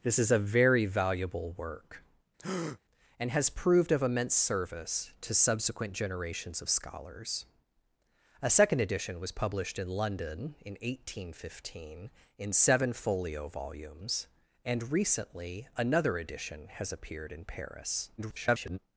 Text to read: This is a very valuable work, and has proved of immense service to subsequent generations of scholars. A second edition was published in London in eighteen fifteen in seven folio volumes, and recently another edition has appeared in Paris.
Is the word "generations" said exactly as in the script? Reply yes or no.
yes